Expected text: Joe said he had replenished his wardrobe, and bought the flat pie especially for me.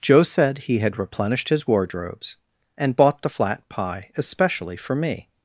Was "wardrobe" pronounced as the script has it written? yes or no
no